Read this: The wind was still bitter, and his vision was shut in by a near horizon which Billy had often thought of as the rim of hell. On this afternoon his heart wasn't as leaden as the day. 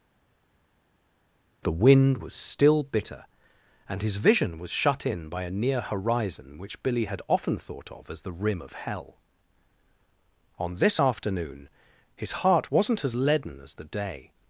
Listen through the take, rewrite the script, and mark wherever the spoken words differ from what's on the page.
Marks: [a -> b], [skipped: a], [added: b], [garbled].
The wind was still bitter, and his vision was shut in by a near horizon which Billy had often thought of as the rim of hell. On this afternoon his heart wasn't as leaden as the day.